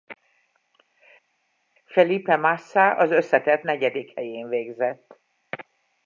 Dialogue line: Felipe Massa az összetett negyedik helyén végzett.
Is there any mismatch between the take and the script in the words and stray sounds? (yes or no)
no